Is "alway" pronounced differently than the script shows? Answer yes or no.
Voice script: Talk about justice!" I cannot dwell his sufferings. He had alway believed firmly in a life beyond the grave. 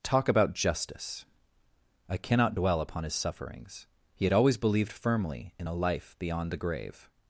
yes